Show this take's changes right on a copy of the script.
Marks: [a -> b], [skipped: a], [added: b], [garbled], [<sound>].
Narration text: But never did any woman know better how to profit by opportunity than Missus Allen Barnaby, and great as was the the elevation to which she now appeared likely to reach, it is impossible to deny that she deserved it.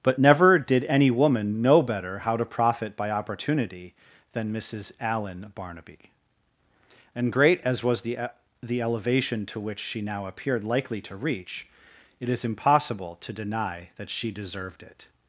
But never did any woman know better how to profit by opportunity than Missus Allen Barnaby, and great as was the the elevation to which she now appeared likely to reach, it is impossible to deny that she deserved it.